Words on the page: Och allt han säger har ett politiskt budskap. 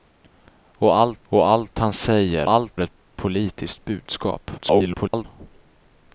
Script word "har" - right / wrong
wrong